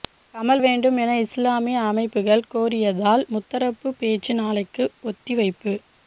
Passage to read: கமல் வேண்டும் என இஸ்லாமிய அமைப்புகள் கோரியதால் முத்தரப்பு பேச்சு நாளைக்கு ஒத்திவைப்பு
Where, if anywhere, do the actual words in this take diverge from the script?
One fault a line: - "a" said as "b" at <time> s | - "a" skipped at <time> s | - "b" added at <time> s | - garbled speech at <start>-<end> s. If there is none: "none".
none